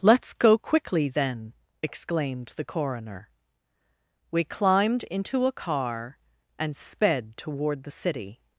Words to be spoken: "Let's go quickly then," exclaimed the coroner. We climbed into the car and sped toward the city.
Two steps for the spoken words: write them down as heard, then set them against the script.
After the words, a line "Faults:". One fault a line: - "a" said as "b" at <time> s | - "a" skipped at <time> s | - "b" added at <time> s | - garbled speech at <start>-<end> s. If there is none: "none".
"Let's go quickly then," exclaimed the coroner. We climbed into a car and sped toward the city.
Faults:
- "the" said as "a" at 5.5 s